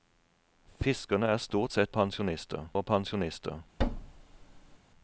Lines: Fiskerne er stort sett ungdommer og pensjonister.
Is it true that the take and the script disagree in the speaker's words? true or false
true